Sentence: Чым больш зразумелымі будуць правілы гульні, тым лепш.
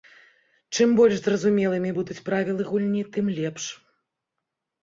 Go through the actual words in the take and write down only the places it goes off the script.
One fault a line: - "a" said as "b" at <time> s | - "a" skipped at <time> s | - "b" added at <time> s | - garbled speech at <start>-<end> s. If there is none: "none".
none